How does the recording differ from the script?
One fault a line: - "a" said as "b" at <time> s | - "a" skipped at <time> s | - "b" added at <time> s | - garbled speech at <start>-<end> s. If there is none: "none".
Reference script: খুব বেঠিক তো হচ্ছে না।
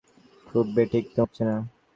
none